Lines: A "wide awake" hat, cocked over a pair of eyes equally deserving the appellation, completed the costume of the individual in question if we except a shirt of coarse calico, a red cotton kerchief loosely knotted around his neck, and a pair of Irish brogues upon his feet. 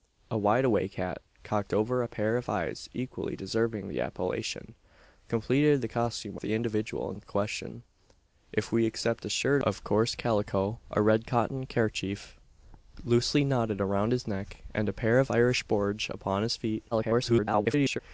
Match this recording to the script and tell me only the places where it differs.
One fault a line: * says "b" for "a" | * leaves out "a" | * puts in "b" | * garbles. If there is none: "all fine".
* leaves out "of"
* garbles